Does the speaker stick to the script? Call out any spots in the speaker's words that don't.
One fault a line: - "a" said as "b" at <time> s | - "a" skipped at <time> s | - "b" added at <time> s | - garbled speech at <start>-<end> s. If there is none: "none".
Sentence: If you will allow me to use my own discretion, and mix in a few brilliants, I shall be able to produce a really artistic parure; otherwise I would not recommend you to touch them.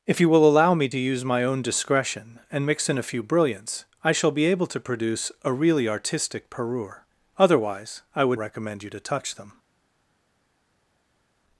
- "not" skipped at 8.4 s